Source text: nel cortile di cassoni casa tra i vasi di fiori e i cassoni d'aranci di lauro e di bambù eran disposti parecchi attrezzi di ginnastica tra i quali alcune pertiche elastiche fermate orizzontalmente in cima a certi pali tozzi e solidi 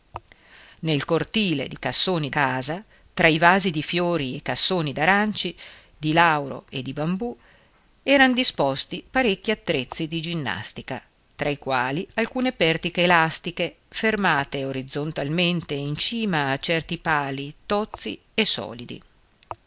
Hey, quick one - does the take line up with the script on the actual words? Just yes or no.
yes